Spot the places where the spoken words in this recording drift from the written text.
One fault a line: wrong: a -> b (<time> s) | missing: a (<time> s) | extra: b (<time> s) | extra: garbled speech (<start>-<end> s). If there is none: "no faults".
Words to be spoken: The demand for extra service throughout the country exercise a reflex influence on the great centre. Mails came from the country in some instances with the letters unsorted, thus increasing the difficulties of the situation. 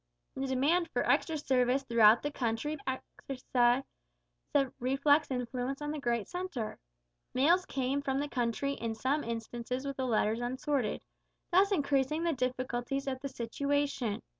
no faults